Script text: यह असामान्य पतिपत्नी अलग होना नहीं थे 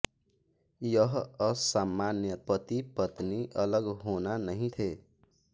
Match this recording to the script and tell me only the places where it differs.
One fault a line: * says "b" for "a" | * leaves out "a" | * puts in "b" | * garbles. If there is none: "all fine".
all fine